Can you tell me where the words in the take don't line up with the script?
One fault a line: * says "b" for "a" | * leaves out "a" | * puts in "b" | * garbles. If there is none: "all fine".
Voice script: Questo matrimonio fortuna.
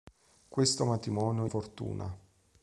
all fine